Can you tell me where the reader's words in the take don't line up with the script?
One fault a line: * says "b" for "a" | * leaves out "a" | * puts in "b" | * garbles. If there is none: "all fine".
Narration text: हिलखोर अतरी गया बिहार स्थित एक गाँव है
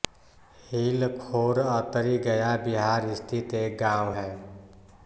all fine